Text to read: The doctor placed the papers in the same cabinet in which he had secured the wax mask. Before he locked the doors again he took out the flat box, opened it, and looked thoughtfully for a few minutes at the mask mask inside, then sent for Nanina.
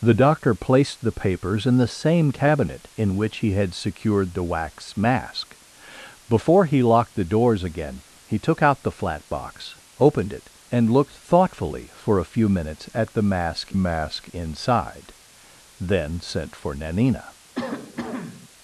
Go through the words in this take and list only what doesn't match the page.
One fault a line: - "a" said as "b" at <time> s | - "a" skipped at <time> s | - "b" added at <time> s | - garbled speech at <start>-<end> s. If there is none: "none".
none